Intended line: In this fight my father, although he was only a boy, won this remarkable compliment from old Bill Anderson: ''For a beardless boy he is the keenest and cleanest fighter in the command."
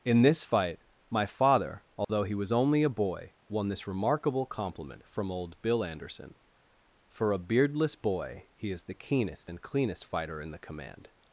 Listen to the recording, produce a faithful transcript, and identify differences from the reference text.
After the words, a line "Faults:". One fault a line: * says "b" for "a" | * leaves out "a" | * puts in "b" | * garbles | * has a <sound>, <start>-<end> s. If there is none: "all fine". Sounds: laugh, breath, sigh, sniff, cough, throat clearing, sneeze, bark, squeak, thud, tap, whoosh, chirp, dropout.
In this fight my father, although he was only a boy, won this remarkable compliment from old Bill Anderson: ''For a beardless boy he is the keenest and cleanest fighter in the command."
Faults:
* has a dropout, 2.0-2.1 s